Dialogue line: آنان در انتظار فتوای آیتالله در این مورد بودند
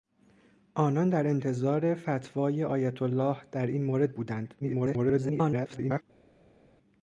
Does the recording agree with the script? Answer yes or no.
no